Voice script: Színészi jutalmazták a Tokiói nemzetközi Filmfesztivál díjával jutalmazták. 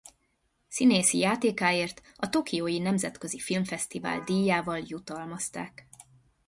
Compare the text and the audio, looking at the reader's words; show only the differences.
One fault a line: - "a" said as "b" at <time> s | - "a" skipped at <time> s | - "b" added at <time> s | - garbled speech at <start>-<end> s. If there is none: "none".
- "jutalmazták" said as "játékáért" at 1.2 s